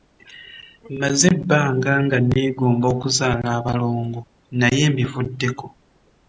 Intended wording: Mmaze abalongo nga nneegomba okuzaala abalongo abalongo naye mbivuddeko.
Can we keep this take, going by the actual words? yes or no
no